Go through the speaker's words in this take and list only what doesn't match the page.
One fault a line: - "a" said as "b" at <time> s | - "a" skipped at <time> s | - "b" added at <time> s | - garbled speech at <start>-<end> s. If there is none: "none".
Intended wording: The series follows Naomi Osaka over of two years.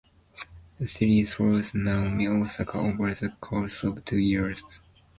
- "the course" added at 3.1 s